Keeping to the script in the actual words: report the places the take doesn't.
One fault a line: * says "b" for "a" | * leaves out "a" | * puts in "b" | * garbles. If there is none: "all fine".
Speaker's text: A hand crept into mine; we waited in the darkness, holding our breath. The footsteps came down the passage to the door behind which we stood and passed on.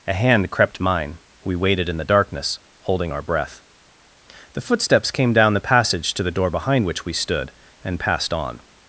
* leaves out "into"